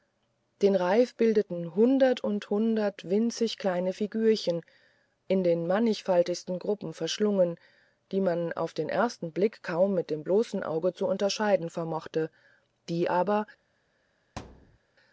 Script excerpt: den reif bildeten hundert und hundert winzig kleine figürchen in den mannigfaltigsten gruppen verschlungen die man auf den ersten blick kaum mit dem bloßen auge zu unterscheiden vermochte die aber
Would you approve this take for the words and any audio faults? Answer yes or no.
no